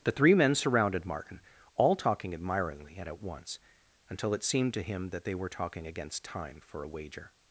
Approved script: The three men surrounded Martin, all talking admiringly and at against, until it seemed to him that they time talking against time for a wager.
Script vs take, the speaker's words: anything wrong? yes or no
yes